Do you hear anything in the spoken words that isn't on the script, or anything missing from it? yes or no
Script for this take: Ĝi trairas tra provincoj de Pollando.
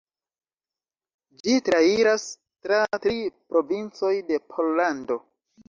yes